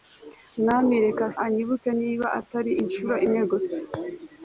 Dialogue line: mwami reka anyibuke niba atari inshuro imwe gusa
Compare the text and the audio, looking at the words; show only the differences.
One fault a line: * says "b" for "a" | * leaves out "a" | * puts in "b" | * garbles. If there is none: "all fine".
all fine